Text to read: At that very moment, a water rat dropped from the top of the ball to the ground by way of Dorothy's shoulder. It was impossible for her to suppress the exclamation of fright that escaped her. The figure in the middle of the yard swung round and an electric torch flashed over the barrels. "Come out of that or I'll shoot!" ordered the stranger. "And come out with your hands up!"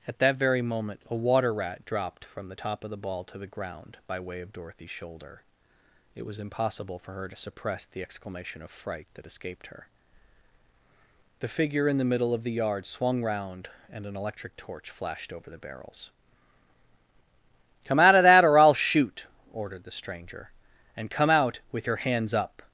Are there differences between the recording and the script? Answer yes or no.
no